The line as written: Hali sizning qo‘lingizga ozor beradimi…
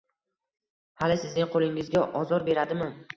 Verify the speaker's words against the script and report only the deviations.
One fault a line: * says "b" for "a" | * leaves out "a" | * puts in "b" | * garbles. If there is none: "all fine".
all fine